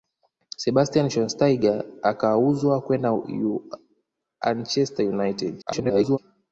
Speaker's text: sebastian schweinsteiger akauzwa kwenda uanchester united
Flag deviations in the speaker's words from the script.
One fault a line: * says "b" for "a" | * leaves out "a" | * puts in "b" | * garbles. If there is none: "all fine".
* garbles